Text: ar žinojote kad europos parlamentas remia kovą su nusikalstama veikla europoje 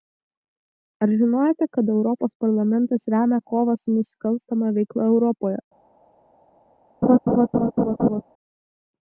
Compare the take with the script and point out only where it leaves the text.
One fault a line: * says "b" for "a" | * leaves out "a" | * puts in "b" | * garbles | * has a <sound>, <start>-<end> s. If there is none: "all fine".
* has a laugh, 7.0-8.2 s